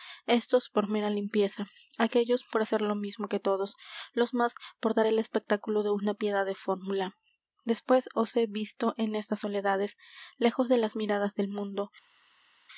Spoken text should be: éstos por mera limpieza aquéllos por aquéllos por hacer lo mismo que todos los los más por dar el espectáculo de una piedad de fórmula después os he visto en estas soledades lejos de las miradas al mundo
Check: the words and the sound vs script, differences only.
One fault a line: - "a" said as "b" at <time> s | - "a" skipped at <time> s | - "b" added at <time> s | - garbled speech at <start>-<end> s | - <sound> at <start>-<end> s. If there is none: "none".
- "aquéllos por" skipped at 2.6 s
- "los" skipped at 4.3 s
- "al" said as "del" at 11.4 s